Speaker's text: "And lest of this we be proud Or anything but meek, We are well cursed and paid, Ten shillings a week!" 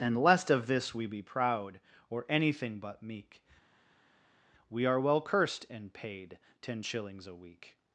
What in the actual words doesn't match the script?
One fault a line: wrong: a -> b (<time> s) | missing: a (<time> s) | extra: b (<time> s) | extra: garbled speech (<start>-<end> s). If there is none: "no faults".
no faults